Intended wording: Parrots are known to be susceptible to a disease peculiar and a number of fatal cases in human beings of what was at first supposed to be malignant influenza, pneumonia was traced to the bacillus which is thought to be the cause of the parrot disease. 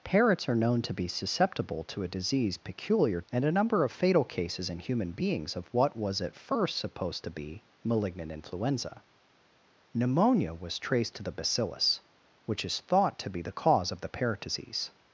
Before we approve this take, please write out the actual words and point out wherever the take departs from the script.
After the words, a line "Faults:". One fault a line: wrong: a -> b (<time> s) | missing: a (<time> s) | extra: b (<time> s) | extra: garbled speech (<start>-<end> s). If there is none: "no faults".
Parrots are known to be susceptible to a disease peculiar and a number of fatal cases in human beings of what was at first supposed to be malignant influenza, pneumonia was traced to the bacillus which is thought to be the cause of the parrot disease.
Faults:
no faults